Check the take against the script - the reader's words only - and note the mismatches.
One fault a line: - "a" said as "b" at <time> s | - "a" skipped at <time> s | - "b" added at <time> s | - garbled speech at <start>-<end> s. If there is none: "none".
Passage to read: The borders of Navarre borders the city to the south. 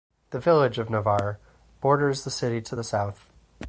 - "borders" said as "village" at 0.4 s